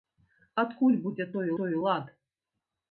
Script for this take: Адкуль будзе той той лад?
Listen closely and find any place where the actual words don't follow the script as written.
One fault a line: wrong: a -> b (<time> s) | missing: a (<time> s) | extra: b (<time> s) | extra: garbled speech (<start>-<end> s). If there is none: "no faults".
no faults